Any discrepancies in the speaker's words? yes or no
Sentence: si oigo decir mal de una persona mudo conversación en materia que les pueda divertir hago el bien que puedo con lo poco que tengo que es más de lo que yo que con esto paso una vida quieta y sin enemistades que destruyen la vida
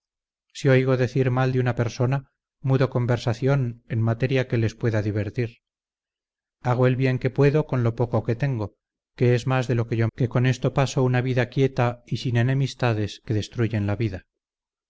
no